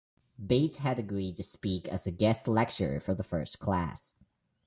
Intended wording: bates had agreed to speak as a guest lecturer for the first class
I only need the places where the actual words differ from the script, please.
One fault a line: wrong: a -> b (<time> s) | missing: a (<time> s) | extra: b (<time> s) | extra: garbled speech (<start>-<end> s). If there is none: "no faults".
no faults